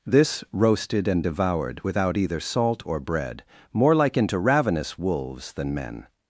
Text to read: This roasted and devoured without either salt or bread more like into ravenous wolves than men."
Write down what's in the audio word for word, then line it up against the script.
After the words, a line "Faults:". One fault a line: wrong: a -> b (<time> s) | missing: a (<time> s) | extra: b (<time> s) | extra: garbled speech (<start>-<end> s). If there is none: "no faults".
This roasted and devoured without either salt or bread more like into ravenous wolves than men."
Faults:
no faults